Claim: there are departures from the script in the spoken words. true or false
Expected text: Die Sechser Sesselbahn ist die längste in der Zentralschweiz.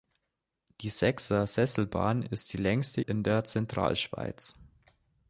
false